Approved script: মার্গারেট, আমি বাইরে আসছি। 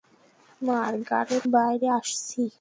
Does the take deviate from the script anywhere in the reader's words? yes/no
yes